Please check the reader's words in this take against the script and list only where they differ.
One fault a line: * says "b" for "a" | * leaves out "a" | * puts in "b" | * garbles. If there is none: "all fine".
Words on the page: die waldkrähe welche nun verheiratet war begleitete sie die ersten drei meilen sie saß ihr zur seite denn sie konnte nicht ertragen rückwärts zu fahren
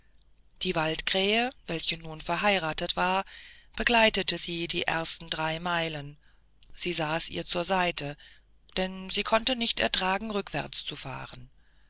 all fine